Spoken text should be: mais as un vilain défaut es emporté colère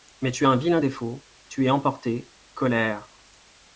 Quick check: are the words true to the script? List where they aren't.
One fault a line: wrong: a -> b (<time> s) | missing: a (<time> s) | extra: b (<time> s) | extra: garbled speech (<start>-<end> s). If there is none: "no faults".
extra: tu (0.3 s)
extra: tu (1.5 s)